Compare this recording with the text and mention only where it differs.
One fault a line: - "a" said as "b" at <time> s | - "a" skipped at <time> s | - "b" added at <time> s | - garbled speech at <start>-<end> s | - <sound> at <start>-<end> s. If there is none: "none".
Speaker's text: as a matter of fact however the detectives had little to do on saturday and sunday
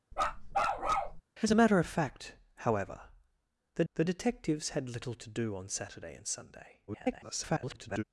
- bark at 0.1-1.2 s
- "the" added at 3.9 s
- garbled speech at 6.9-8.0 s